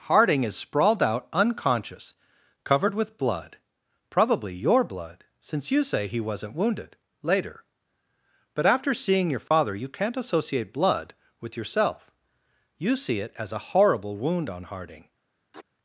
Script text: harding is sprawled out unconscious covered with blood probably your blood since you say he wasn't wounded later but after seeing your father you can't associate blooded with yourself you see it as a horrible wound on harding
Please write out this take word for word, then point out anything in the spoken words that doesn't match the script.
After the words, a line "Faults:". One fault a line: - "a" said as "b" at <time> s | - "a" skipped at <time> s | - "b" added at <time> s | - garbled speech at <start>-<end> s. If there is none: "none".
harding is sprawled out unconscious covered with blood probably your blood since you say he wasn't wounded later but after seeing your father you can't associate blood with yourself you see it as a horrible wound on harding
Faults:
- "blooded" said as "blood" at 10.7 s